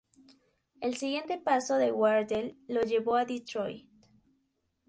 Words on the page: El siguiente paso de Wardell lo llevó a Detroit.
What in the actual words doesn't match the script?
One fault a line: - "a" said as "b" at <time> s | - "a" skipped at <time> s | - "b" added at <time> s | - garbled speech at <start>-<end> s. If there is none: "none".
none